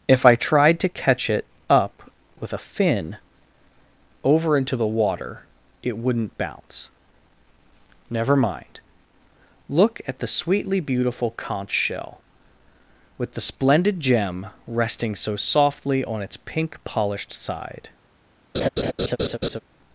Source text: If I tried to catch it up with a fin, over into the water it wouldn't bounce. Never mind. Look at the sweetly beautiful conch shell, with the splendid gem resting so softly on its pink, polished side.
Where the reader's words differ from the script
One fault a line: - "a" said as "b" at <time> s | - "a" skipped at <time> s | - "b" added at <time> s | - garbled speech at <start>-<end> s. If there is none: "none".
none